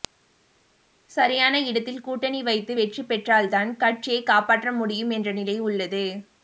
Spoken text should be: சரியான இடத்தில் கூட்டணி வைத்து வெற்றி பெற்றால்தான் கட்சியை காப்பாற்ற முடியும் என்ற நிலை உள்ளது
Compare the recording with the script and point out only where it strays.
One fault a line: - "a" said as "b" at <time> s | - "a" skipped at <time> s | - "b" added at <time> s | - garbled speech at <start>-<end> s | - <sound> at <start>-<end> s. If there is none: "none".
none